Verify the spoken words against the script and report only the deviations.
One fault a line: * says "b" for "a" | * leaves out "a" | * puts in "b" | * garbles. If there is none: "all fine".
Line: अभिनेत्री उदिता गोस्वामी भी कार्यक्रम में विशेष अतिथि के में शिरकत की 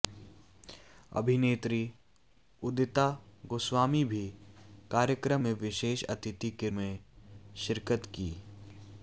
all fine